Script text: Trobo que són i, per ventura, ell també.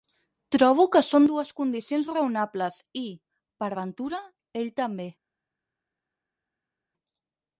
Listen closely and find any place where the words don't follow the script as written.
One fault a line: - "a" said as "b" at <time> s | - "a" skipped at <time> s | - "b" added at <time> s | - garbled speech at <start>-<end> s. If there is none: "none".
- "dues condicions raonables" added at 1.3 s